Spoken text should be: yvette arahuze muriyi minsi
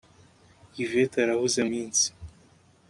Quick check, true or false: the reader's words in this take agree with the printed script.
false